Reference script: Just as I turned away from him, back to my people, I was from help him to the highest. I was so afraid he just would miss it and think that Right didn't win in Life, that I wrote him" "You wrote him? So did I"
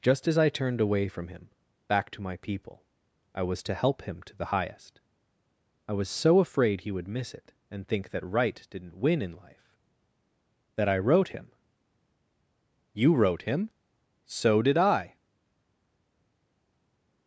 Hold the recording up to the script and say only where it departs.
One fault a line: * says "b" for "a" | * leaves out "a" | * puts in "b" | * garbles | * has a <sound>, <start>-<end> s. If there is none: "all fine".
* says "to" for "from"
* leaves out "just"